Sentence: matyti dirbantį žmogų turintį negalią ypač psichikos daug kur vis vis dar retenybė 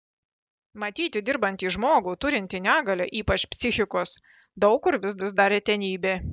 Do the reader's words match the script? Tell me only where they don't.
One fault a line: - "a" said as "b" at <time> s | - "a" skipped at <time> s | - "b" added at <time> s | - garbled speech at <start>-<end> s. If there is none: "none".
none